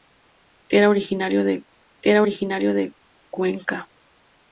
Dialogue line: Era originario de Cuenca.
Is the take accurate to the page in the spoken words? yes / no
no